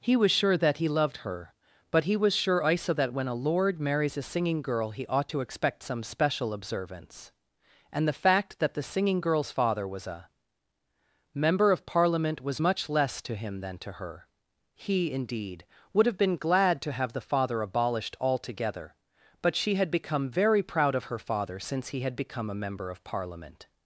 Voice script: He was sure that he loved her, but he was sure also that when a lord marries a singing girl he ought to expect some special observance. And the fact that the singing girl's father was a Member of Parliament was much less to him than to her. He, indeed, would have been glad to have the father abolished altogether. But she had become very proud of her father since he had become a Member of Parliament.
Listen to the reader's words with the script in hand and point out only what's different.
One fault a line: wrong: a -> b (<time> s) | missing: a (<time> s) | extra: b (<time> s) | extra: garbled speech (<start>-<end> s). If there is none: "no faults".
no faults